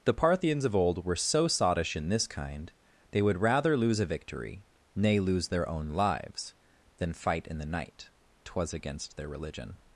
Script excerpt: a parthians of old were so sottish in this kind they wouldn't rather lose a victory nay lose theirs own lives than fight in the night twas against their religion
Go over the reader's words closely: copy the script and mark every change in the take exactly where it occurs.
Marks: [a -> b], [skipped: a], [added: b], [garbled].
[a -> the] parthians of old were so sottish in this kind they [wouldn't -> would] rather lose a victory nay lose [theirs -> their] own lives than fight in the night twas against their religion